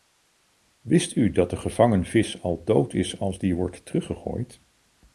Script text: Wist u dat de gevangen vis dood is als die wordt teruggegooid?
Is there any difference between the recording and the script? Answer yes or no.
yes